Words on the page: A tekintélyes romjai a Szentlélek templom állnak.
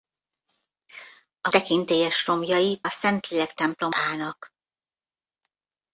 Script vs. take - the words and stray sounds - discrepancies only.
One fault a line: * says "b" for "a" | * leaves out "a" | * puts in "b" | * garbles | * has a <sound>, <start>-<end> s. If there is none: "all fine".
all fine